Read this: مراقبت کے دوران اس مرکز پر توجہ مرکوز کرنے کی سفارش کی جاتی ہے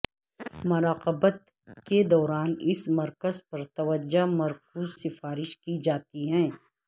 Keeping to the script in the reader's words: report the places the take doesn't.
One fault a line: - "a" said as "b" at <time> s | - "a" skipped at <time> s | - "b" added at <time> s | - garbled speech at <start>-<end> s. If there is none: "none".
- "کرنے کی" skipped at 5.0 s